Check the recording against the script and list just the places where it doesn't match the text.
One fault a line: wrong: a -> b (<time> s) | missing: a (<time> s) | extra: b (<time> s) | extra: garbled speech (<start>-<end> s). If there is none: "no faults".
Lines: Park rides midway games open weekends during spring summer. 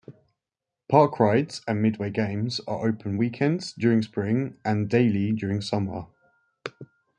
extra: and (1.7 s)
extra: are (2.7 s)
extra: and daily during (4.7 s)